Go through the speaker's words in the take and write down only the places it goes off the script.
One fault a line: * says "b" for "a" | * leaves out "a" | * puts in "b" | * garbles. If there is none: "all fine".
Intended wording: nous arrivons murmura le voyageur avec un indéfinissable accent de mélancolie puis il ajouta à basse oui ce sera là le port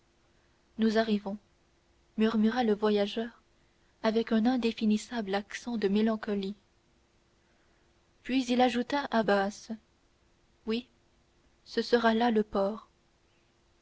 all fine